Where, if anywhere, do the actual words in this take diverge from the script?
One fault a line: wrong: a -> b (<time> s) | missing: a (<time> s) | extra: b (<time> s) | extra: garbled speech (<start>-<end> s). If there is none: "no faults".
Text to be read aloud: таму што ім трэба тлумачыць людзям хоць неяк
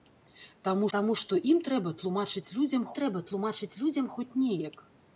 extra: таму (0.9 s)
extra: трэба тлумачыць людзям (3.0 s)